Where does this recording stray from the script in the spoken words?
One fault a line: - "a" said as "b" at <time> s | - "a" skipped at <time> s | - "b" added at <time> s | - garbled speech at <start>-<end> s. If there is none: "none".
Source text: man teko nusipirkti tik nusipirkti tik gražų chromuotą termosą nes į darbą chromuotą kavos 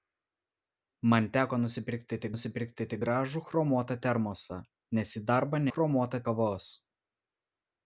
none